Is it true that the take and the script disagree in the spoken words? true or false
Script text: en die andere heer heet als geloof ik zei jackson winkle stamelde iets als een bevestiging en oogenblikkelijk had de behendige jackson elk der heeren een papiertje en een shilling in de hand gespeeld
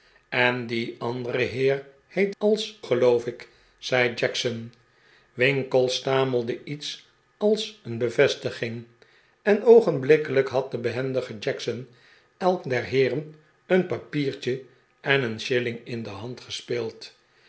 false